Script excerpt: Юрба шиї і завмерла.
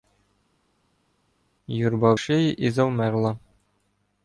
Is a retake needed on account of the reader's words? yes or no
no